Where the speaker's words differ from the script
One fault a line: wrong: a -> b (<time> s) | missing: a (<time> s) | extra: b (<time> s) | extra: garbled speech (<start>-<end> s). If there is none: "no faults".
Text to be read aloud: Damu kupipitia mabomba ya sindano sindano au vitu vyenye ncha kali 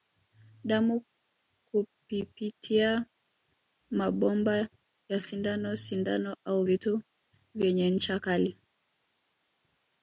no faults